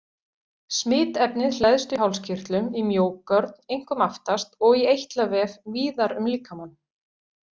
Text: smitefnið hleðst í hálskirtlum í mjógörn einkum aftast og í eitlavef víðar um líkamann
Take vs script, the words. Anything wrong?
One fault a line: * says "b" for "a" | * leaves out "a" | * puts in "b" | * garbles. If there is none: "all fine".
all fine